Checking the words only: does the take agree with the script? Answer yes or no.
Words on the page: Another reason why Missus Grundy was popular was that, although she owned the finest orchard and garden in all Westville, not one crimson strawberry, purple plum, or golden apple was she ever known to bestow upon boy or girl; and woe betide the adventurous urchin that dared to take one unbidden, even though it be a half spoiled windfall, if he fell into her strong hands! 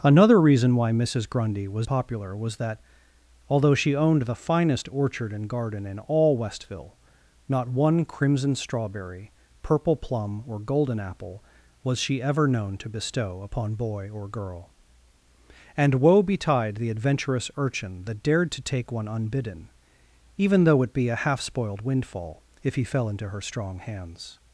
yes